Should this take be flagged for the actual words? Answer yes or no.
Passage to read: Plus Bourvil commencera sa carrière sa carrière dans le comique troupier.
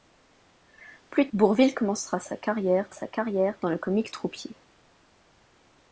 no